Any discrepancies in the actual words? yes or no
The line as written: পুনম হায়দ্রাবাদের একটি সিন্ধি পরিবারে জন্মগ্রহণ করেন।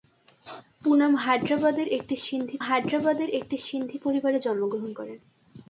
yes